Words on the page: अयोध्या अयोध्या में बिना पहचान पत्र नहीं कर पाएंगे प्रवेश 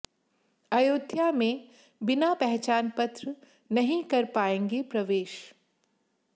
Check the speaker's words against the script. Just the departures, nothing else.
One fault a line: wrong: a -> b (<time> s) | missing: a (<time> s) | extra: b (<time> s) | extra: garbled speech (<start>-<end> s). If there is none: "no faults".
missing: अयोध्या (1.3 s)